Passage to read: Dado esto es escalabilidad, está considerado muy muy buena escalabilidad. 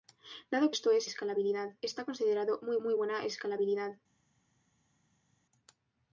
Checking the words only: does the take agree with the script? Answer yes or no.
yes